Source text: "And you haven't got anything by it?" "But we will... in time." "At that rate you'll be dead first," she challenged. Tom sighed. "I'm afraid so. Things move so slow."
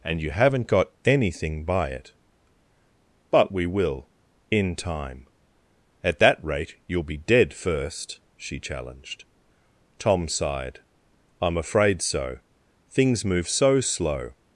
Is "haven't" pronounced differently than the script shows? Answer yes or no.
no